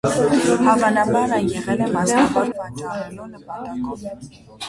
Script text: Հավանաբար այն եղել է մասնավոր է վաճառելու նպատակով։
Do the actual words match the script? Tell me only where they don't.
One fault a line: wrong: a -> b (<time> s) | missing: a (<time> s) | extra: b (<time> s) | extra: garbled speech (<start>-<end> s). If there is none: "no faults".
no faults